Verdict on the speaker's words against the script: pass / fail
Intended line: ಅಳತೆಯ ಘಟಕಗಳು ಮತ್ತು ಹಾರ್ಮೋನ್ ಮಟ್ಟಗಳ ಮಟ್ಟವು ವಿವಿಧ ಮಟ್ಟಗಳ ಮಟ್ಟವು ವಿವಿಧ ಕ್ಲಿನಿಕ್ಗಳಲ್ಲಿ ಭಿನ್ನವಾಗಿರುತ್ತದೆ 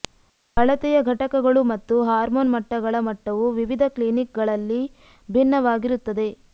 fail